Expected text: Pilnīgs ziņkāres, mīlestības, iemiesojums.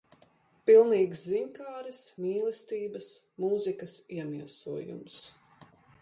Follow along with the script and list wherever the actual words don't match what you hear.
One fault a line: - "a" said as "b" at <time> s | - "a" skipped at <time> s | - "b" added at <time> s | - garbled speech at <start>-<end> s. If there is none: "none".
- "mūzikas" added at 3.5 s